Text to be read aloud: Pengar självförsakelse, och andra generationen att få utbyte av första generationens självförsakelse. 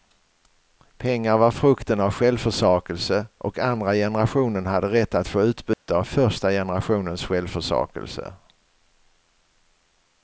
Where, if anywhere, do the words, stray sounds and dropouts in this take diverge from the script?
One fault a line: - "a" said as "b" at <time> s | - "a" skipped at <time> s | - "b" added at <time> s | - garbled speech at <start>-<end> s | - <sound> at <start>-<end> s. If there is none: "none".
- "var frukten av" added at 1.4 s
- "hade rätt" added at 4.7 s
- dropout at 5.7-5.9 s